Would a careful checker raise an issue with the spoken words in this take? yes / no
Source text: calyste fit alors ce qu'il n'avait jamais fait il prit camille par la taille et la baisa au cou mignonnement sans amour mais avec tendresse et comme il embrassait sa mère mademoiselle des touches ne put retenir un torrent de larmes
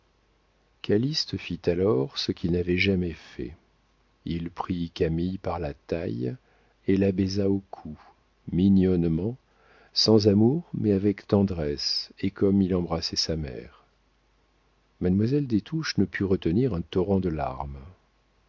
no